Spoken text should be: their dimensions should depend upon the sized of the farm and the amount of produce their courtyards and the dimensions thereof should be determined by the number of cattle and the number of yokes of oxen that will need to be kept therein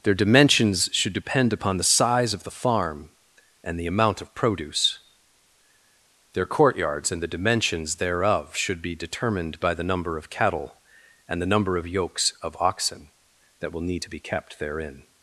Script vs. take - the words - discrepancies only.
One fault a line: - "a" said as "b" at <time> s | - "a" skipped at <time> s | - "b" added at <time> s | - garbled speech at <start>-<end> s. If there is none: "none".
- "sized" said as "size" at 1.8 s